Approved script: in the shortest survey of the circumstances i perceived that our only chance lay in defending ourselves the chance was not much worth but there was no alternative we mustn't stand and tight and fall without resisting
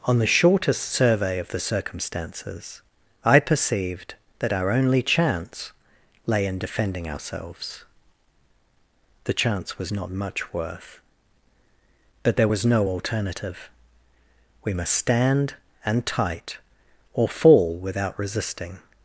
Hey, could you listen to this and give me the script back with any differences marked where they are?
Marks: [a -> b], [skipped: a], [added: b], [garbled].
[in -> on] the shortest survey of the circumstances i perceived that our only chance lay in defending ourselves the chance was not much worth but there was no alternative we [mustn't -> must] stand and tight [and -> or] fall without resisting